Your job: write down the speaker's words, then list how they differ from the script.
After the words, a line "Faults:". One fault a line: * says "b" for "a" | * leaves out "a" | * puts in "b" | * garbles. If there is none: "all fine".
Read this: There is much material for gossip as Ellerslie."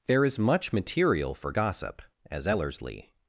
There is much material for gossip as Ellerslie."
Faults:
all fine